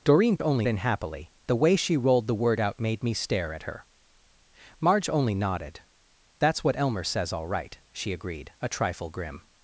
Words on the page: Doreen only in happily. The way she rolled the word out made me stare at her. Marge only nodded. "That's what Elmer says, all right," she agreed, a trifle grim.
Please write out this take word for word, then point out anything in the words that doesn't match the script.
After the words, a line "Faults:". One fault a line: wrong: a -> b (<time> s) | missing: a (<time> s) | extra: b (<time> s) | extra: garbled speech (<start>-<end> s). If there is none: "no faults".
Doreen only in happily. The way she rolled the word out made me stare at her. Marge only nodded. "That's what Elmer says, all right," she agreed, a trifle grim.
Faults:
no faults